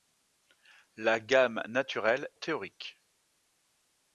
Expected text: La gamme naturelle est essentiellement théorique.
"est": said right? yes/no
no